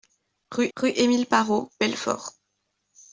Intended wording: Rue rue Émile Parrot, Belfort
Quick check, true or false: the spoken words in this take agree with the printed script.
true